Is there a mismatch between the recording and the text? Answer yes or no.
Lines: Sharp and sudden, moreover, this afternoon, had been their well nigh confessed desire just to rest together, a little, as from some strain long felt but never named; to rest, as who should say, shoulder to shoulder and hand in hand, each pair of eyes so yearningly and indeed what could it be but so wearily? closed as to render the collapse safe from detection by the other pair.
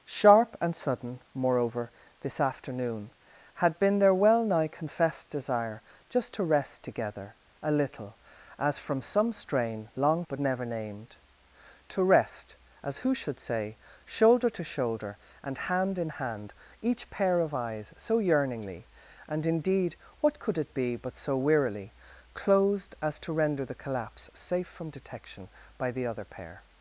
yes